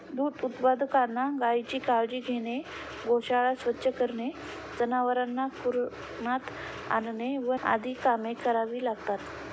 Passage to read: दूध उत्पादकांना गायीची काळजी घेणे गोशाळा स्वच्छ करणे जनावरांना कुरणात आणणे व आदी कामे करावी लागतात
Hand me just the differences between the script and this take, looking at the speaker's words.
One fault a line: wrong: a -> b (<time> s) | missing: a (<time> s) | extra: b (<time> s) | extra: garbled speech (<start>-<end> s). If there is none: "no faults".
no faults